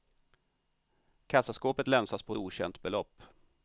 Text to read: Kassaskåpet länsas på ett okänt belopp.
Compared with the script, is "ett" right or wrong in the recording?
wrong